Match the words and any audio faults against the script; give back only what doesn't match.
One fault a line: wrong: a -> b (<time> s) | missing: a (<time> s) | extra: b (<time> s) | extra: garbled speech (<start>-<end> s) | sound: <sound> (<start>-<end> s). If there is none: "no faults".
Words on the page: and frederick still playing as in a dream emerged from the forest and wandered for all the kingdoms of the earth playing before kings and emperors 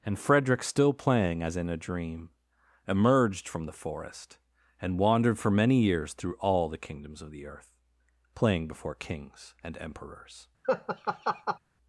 extra: many years through (5.5 s)
sound: laugh (10.6-11.6 s)